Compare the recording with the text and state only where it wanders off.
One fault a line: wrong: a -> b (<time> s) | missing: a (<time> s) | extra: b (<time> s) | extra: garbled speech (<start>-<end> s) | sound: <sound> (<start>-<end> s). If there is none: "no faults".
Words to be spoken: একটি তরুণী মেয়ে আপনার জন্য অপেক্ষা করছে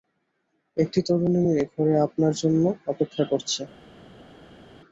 extra: ঘরে (1.7 s)